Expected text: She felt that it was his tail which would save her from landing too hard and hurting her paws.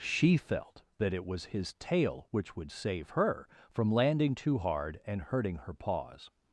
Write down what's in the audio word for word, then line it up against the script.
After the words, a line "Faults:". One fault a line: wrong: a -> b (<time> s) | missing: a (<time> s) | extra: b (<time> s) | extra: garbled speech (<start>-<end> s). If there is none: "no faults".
She felt that it was his tail which would save her from landing too hard and hurting her paws.
Faults:
no faults